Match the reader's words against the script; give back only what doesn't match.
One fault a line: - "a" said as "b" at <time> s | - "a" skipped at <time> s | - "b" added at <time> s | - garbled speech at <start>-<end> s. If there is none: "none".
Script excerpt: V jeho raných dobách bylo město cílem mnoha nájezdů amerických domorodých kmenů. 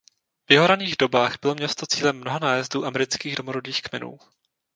none